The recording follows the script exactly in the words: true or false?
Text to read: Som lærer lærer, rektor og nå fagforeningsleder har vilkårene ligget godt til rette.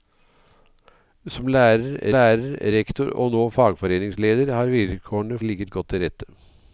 true